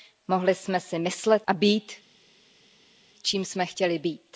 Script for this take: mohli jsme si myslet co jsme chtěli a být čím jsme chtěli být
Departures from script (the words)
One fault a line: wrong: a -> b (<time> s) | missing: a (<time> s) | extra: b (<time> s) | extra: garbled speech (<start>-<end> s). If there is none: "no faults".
missing: co jsme chtěli (1.5 s)